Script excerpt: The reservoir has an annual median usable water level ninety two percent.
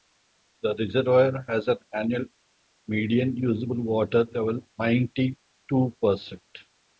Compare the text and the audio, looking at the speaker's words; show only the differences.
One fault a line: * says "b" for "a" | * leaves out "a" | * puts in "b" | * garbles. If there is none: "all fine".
all fine